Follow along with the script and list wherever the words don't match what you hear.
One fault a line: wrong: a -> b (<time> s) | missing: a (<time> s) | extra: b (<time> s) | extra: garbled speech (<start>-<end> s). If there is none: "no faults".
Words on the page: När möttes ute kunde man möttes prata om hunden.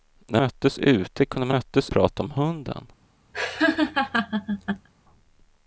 no faults